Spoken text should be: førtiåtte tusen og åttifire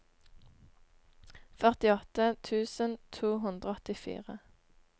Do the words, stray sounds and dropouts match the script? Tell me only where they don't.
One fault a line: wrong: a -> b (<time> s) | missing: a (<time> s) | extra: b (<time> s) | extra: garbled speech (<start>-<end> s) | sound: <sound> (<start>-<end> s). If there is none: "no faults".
extra: to hundre (3.2 s)